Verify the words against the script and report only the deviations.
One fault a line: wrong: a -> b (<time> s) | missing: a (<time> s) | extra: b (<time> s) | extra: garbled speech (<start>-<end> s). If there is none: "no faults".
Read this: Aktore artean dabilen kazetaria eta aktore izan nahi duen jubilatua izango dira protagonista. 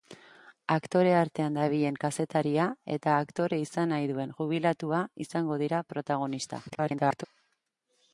extra: garbled speech (6.7-7.3 s)